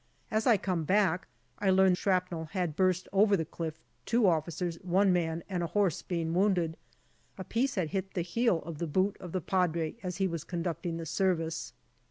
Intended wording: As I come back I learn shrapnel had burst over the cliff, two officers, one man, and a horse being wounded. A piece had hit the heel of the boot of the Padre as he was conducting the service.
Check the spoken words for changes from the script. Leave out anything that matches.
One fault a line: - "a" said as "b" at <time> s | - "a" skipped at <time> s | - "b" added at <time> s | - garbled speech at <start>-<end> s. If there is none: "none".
none